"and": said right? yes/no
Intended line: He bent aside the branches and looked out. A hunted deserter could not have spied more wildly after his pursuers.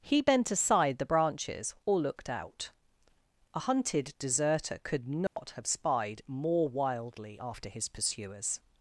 no